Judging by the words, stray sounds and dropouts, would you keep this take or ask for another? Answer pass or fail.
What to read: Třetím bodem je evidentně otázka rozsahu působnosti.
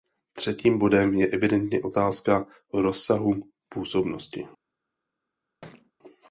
fail